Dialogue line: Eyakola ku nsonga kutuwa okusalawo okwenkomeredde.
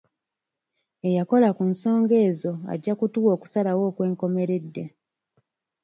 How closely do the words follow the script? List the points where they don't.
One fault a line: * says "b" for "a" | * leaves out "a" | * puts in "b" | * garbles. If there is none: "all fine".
* puts in "ezo ajja"